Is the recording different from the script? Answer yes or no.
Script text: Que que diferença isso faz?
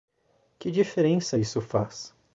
yes